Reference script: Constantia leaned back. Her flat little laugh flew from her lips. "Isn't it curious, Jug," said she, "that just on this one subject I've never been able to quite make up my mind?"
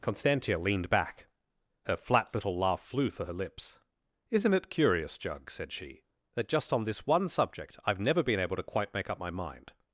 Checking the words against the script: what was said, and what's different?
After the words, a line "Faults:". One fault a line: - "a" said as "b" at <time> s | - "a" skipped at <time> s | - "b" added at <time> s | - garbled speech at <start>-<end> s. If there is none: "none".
Constantia leaned back. Her flat little laugh flew for her lips. "Isn't it curious, Jug," said she, "that just on this one subject I've never been able to quite make up my mind?"
Faults:
- "from" said as "for" at 3.1 s